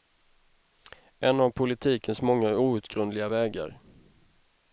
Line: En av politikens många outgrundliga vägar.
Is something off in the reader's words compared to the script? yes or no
no